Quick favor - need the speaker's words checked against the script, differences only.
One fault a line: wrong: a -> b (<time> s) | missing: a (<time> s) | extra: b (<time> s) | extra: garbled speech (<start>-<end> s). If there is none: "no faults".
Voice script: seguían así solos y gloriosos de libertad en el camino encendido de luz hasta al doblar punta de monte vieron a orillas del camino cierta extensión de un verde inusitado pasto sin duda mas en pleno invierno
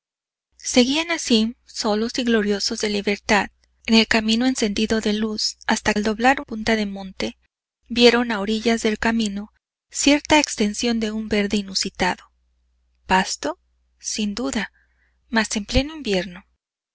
no faults